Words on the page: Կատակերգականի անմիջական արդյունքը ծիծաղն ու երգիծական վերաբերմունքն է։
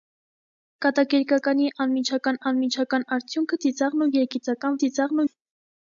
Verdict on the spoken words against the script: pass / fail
fail